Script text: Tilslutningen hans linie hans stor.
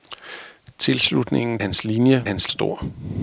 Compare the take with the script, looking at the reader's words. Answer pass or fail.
pass